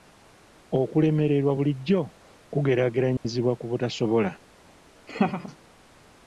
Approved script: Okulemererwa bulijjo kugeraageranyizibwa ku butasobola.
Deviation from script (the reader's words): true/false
false